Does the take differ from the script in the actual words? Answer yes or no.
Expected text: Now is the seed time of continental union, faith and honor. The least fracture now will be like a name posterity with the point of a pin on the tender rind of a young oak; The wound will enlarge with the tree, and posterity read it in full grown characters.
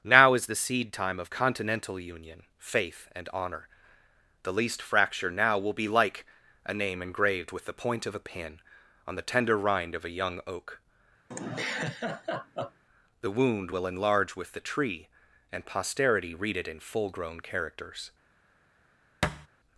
yes